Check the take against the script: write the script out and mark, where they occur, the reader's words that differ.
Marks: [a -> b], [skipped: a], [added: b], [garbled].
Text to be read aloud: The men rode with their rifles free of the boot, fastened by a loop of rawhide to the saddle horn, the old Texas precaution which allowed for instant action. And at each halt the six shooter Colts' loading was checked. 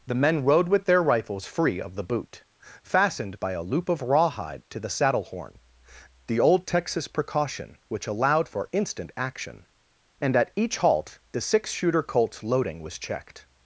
The men rode with their rifles free of the boot, fastened by a loop of rawhide to the saddle horn, the old Texas precaution which allowed for instant action. And at each halt the six shooter Colts' loading was checked.